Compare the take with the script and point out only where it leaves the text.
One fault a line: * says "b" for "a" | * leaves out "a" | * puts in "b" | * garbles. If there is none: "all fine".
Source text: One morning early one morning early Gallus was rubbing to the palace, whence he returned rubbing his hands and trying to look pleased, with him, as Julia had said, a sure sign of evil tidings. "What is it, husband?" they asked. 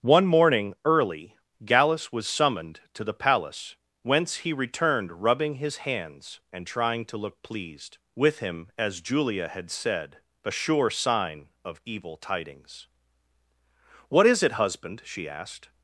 * leaves out "one morning early"
* says "summoned" for "rubbing"
* says "she" for "they"